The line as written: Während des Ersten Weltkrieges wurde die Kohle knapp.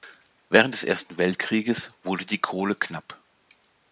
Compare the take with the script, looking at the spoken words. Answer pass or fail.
pass